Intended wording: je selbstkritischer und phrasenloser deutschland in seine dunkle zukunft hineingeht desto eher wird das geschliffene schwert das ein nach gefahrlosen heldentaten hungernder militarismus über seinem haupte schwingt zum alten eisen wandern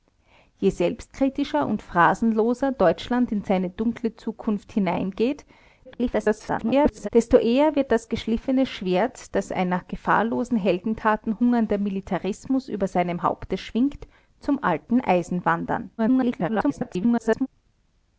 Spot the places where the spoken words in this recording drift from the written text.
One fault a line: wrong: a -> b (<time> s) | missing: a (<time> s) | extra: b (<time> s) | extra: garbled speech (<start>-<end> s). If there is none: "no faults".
extra: garbled speech (5.8-7.1 s)
extra: garbled speech (16.0-17.5 s)